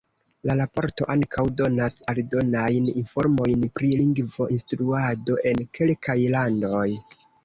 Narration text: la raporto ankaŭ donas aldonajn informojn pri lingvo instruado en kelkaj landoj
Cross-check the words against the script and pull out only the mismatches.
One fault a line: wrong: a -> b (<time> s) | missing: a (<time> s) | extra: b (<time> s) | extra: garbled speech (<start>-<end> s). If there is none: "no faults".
no faults